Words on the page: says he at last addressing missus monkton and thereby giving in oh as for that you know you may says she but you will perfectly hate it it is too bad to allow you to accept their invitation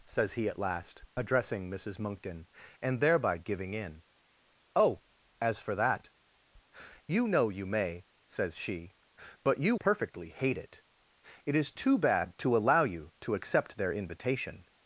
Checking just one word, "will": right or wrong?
wrong